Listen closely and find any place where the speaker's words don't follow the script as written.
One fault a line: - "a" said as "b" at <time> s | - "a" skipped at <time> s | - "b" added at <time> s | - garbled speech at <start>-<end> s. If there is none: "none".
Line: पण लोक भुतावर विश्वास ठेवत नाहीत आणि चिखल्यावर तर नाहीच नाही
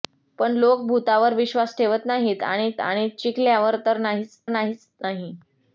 - "आणि" added at 2.8 s
- "नाहीच" added at 4.5 s